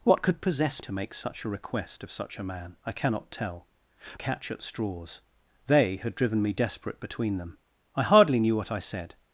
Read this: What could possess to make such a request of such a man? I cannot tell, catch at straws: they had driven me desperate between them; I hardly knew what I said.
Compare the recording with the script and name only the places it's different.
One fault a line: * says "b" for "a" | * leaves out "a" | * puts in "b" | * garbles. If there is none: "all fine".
all fine